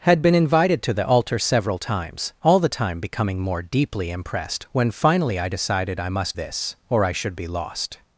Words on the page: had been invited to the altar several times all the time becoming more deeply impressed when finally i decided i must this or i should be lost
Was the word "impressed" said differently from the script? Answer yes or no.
no